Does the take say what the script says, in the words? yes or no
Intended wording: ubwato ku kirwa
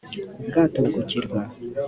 yes